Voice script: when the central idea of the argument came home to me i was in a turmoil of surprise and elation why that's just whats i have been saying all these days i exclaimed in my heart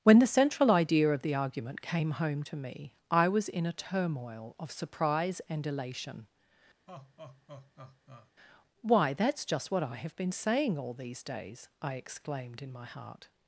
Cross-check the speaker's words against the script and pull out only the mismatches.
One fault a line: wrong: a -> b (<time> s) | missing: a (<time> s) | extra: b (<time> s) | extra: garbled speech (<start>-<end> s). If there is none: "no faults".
wrong: whats -> what (9.7 s)